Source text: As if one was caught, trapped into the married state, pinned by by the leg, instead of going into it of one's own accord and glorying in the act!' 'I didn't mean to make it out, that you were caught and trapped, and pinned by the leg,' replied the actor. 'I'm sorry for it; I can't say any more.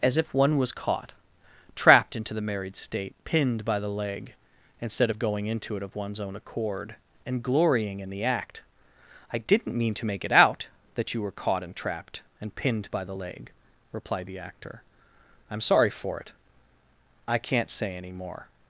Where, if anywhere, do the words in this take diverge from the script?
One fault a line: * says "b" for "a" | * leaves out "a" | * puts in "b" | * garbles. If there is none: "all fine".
* leaves out "by"